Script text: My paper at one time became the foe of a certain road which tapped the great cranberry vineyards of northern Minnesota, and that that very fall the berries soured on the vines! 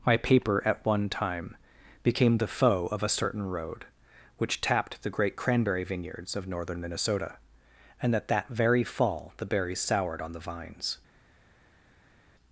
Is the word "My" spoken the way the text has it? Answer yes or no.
yes